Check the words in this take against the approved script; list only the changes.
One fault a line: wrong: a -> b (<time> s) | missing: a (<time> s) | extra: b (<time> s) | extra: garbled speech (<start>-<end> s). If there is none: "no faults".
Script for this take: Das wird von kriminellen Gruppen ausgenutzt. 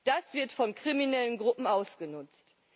no faults